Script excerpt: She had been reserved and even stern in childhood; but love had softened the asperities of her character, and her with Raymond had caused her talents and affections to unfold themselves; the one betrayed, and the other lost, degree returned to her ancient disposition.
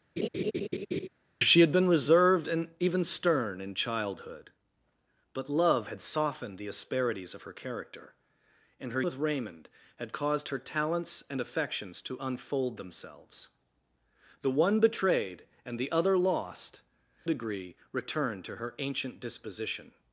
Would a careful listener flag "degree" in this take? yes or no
no